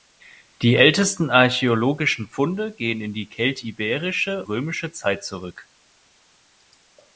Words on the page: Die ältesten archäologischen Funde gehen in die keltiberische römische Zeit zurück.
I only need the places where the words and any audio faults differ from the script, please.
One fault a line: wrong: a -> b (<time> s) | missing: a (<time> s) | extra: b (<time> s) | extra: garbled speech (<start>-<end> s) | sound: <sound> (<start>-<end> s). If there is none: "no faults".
no faults